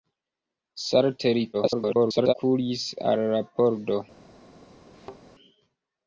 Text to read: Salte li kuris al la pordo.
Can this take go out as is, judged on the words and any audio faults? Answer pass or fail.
fail